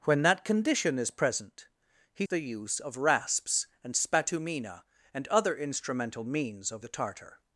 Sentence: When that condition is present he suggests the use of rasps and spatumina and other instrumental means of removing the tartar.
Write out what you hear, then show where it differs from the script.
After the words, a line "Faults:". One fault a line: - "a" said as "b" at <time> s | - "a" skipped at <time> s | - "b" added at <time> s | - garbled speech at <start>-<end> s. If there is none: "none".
When that condition is present he the use of rasps and spatumina and other instrumental means of the tartar.
Faults:
- "suggests" skipped at 2.2 s
- "removing" skipped at 6.8 s